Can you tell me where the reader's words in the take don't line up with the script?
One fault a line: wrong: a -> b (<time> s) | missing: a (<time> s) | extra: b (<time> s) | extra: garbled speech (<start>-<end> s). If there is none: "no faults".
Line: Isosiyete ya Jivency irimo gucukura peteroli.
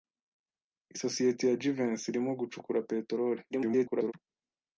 extra: garbled speech (3.5-4.1 s)